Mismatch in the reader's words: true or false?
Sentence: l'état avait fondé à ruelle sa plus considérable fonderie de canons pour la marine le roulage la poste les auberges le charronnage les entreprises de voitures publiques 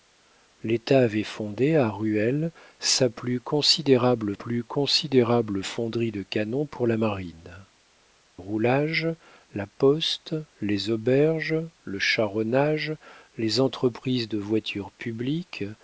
true